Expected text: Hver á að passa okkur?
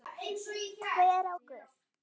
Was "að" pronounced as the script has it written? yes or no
no